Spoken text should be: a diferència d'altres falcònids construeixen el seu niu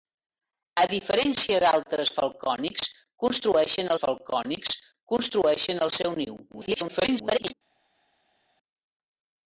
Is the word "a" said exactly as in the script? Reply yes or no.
yes